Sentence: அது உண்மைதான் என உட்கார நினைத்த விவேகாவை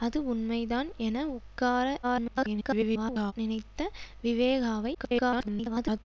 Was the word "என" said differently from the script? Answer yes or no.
no